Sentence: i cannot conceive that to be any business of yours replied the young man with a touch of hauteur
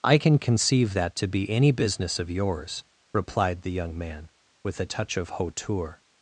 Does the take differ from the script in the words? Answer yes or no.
yes